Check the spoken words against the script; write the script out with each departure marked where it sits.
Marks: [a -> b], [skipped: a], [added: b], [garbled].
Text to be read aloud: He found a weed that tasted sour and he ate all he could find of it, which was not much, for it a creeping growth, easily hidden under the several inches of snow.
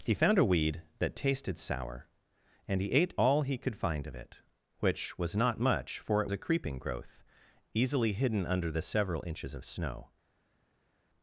He found a weed that tasted sour and he ate all he could find of it, which was not much, for it a creeping growth, easily hidden under the several inches of snow.